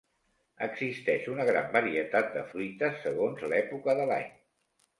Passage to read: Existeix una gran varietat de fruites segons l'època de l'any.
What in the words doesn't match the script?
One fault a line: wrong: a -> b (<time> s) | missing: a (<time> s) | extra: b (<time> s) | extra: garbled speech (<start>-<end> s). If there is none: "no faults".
no faults